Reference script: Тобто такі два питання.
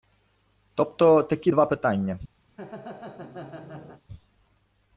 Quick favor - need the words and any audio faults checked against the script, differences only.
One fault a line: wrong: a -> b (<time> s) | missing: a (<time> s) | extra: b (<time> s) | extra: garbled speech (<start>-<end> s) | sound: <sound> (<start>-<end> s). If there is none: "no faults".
sound: laugh (2.5-4.0 s)